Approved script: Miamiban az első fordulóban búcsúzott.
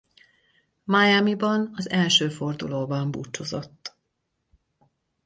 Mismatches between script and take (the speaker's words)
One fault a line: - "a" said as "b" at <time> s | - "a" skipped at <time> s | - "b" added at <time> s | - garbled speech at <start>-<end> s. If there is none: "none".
none